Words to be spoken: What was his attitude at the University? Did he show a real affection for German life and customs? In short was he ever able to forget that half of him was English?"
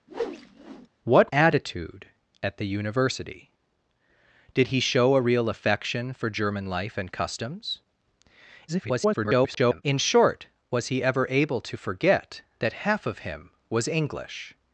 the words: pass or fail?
fail